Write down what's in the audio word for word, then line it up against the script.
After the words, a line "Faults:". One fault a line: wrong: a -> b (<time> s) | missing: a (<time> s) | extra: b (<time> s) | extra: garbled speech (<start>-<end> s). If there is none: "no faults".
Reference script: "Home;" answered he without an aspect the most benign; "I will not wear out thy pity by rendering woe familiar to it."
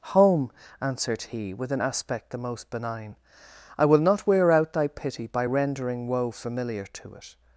"Home;" answered he with an aspect the most benign; "I will not wear out thy pity by rendering woe familiar to it."
Faults:
wrong: without -> with (1.5 s)